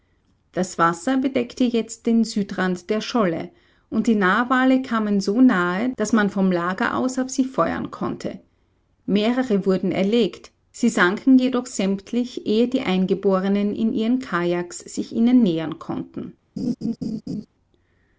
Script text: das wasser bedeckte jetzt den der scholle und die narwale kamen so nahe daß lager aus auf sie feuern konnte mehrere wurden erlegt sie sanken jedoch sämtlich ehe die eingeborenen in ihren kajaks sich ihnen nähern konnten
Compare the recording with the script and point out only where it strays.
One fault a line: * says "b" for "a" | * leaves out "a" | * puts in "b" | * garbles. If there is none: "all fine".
* puts in "südrand"
* puts in "man vom"